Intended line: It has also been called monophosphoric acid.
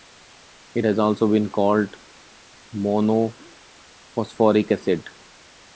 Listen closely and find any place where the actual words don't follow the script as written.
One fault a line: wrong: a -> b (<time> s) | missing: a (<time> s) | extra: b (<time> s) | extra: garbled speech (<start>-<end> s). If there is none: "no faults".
no faults